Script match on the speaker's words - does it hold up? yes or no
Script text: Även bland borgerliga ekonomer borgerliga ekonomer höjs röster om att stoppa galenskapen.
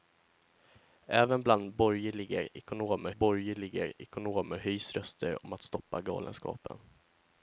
yes